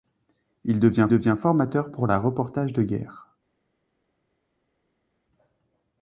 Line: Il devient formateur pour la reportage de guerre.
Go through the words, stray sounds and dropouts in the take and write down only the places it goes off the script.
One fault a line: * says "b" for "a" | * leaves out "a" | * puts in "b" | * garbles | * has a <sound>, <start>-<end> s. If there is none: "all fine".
* puts in "devient"